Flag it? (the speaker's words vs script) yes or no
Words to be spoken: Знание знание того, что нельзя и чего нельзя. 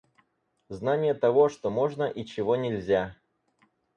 yes